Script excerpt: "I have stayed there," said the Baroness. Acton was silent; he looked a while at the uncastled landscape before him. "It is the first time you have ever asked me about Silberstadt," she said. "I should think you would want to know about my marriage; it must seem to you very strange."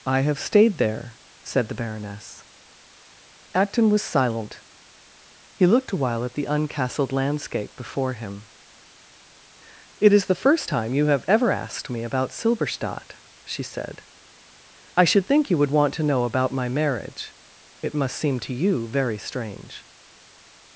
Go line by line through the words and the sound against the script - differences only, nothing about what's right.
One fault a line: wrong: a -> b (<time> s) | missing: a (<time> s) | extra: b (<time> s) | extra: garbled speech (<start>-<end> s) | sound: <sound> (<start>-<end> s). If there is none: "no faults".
no faults